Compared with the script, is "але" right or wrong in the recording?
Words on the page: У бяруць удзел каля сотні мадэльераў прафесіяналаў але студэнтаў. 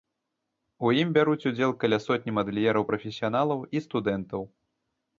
wrong